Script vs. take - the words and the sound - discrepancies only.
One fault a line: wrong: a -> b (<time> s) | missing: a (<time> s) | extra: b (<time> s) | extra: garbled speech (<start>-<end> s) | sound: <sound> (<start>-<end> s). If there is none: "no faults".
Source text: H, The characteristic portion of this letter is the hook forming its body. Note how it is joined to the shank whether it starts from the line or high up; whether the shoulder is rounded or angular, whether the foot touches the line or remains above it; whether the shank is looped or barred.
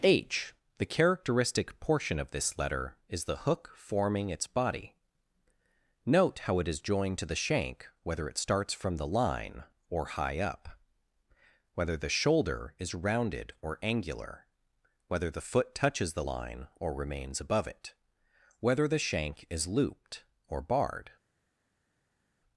no faults